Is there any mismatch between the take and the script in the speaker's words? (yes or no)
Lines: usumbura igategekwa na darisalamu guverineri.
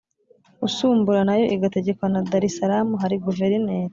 yes